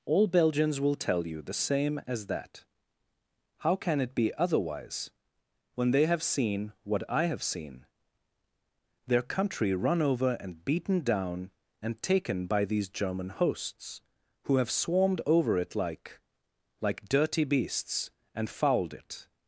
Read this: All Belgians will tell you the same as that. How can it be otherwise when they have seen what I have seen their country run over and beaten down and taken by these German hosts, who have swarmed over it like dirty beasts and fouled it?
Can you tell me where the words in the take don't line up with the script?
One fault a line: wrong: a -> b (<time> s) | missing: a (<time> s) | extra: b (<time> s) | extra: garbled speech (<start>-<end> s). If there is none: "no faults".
extra: like (16.8 s)